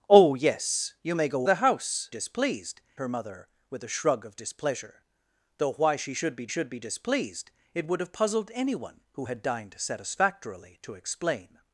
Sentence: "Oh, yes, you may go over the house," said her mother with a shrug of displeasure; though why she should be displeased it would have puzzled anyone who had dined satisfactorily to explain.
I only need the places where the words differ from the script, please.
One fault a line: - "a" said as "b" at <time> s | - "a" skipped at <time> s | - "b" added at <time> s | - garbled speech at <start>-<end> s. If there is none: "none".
- "over" skipped at 1.5 s
- "said" said as "displeased" at 2.1 s
- "should be" added at 6.5 s